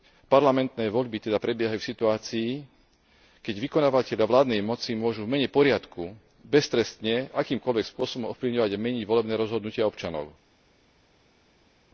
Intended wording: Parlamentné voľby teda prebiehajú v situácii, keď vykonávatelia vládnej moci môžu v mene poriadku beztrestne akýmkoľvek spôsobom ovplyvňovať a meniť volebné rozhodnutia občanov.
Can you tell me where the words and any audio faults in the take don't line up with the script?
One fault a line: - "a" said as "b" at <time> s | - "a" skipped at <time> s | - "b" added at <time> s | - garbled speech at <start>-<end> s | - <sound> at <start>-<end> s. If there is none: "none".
none